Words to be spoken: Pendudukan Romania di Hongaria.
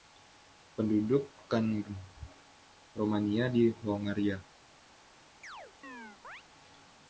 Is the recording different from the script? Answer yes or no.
no